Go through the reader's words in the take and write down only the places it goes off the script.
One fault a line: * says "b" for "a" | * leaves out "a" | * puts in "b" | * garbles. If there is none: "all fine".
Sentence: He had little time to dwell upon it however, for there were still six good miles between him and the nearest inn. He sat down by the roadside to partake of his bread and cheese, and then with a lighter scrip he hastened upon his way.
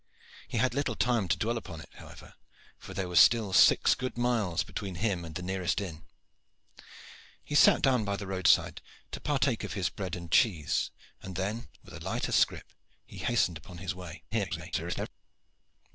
* garbles